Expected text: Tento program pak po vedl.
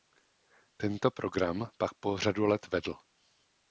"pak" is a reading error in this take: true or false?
false